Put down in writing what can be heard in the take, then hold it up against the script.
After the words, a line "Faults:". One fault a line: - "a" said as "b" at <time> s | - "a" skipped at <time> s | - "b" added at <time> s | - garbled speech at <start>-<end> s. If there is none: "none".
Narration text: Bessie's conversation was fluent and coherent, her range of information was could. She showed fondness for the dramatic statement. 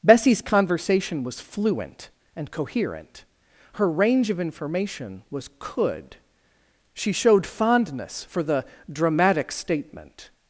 Bessie's conversation was fluent and coherent, her range of information was could. She showed fondness for the dramatic statement.
Faults:
none